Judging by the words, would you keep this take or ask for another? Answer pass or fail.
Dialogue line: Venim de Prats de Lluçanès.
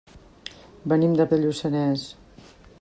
fail